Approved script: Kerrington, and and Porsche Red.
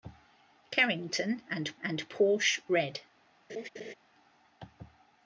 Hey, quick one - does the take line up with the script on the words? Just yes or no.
yes